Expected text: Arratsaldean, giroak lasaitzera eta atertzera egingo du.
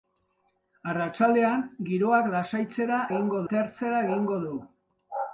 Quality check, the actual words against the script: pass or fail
fail